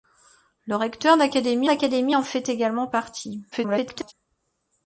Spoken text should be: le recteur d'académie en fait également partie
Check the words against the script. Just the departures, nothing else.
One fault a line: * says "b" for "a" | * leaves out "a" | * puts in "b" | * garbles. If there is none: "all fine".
* puts in "d'académie"
* garbles